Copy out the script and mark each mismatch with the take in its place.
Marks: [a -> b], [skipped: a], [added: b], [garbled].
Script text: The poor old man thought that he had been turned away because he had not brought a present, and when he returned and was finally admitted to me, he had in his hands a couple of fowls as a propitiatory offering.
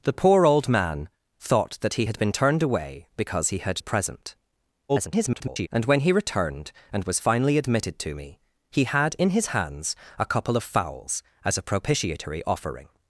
The poor old man thought that he had been turned away because he had [skipped: not brought] a present, [garbled] and when he returned and was finally admitted to me, he had in his hands a couple of fowls as a propitiatory offering.